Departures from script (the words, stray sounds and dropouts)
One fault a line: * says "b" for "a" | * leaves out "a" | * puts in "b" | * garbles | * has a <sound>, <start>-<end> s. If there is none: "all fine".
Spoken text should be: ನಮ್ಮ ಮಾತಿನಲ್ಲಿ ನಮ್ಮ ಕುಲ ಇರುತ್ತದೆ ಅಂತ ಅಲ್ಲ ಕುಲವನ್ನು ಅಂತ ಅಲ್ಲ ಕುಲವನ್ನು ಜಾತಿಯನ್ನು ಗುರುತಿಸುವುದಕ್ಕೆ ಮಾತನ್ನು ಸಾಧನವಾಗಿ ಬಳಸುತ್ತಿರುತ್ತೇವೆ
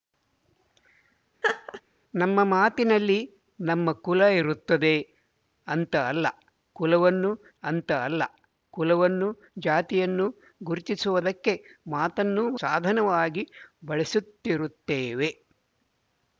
* has a laugh, 1.4-1.8 s